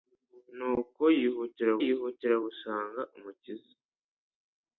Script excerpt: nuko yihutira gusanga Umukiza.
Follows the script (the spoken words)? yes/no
no